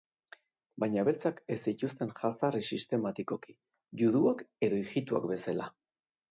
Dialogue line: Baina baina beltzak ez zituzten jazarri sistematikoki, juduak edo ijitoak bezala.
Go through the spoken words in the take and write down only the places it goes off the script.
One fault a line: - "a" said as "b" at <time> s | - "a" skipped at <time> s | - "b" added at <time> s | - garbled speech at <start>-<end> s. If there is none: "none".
- "baina" skipped at 1.0 s